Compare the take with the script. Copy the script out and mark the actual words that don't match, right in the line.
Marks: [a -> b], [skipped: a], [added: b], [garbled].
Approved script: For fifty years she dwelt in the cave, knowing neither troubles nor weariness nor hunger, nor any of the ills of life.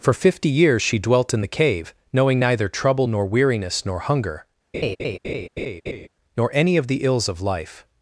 For fifty years she dwelt in the cave, knowing neither [troubles -> trouble] nor weariness nor hunger, nor any of the ills of life.